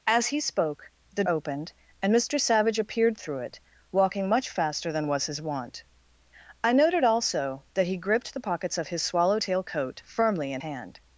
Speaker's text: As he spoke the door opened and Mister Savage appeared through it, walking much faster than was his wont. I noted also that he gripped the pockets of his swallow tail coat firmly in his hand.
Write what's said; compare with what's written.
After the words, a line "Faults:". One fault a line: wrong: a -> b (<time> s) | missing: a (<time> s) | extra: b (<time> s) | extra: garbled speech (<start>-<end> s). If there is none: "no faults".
As he spoke the opened and Mister Savage appeared through it, walking much faster than was his wont. I noted also that he gripped the pockets of his swallow tail coat firmly in hand.
Faults:
missing: door (1.2 s)
missing: his (10.6 s)